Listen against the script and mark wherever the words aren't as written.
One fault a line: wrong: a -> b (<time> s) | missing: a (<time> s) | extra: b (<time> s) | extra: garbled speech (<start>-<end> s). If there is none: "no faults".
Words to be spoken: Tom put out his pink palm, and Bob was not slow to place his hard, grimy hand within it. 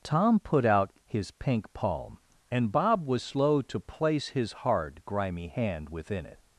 missing: not (3.2 s)